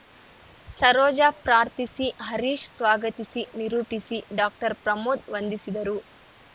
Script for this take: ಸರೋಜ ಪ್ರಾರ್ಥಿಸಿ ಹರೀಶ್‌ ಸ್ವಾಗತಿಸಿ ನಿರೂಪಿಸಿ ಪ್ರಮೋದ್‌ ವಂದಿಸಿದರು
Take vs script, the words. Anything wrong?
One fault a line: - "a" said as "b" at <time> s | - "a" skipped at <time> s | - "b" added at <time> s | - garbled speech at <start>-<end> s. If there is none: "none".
- "ಡಾಕ್ಟರ್" added at 4.4 s